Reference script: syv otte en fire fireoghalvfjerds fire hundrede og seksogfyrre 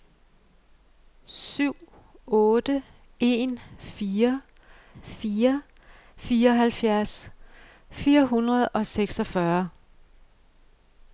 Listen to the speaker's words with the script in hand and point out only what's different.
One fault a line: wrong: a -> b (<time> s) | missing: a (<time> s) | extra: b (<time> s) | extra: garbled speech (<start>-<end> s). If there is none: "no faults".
extra: fire (5.0 s)